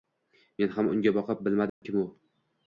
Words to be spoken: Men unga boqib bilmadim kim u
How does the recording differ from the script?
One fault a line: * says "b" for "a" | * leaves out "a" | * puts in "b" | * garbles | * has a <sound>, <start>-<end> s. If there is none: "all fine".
* puts in "ham"
* has a dropout, 1.7-1.8 s